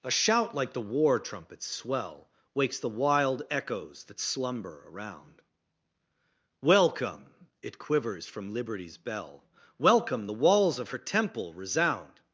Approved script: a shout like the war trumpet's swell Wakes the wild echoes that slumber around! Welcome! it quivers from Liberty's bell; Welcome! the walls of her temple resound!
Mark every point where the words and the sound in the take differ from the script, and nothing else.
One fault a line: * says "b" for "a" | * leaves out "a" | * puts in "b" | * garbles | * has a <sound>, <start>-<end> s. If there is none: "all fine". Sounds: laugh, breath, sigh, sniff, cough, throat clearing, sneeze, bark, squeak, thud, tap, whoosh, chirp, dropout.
all fine